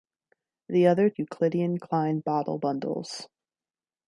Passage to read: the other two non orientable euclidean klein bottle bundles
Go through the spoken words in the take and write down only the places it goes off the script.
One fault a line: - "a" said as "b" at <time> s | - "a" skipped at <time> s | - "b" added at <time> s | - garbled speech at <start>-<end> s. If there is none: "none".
- "two non orientable" skipped at 1.1 s